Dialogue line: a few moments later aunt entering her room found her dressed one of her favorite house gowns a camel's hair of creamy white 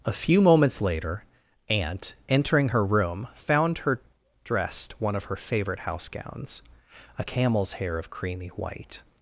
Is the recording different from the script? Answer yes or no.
no